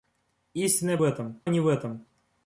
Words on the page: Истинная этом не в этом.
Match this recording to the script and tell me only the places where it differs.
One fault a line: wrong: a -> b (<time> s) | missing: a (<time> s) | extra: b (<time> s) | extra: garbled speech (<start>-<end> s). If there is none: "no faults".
no faults